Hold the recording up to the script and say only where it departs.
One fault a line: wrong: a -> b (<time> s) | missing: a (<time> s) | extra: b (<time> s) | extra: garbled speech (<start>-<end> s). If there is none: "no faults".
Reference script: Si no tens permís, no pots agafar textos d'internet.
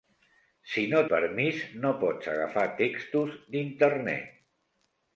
missing: tens (1.0 s)